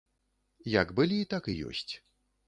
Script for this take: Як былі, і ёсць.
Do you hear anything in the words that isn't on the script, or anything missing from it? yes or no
yes